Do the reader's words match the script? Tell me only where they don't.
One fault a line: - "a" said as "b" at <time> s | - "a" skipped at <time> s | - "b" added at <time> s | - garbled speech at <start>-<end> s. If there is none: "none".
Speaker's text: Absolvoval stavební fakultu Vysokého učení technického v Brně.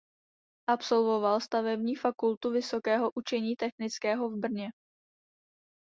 none